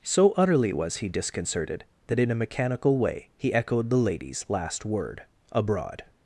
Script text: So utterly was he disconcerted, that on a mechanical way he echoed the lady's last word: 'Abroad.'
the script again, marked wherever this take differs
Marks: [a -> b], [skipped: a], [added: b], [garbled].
So utterly was he disconcerted, that [on -> in] a mechanical way he echoed the lady's last word: 'Abroad.'